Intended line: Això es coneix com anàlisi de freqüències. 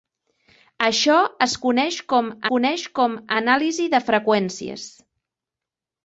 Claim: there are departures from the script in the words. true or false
true